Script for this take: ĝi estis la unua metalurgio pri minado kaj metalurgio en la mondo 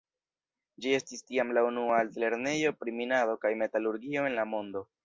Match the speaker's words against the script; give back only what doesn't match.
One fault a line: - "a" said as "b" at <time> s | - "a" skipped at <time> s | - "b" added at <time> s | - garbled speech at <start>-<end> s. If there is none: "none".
- "tiam" added at 1.3 s
- "metalurgio" said as "altlernejo" at 2.1 s